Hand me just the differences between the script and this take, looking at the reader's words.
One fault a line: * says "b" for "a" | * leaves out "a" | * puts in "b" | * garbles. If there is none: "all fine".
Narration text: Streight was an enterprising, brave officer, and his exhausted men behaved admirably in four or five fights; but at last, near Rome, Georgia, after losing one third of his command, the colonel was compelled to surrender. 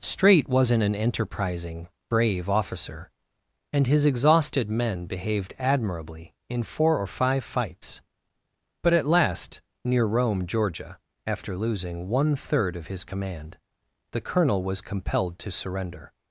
* says "wasn't" for "was"